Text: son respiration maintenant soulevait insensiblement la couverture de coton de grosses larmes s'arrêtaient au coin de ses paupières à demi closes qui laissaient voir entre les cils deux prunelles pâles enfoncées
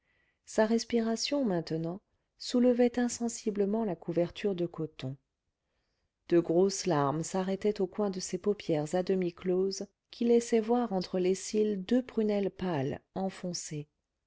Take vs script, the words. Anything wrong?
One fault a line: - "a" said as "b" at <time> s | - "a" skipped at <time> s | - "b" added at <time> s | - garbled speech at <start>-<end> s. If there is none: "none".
- "son" said as "sa" at 0.5 s